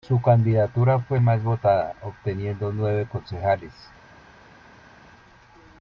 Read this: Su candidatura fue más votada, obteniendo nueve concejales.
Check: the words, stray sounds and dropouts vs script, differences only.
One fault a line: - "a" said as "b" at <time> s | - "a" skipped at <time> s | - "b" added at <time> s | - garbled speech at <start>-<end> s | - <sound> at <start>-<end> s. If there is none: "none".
none